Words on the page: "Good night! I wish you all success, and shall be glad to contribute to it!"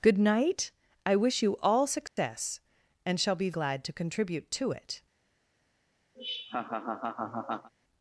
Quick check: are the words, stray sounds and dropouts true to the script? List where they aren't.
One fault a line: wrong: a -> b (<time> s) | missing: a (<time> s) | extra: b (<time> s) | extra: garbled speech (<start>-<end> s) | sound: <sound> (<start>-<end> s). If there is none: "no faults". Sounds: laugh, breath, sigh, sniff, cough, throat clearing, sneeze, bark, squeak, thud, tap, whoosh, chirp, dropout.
sound: dropout (2.1-2.2 s)
sound: laugh (6.1-7.7 s)